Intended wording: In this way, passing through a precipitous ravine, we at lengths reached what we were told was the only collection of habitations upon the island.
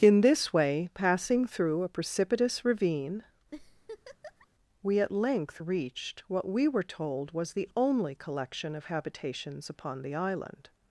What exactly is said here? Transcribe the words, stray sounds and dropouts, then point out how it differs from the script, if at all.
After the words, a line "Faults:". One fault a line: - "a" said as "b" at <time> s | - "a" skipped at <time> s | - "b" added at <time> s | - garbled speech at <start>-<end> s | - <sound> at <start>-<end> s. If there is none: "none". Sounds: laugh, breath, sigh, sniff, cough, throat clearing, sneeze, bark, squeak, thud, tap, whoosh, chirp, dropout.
In this way, passing through a precipitous ravine, we at length reached what we were told was the only collection of habitations upon the island.
Faults:
- laugh at 3.5-4.5 s
- "lengths" said as "length" at 5.2 s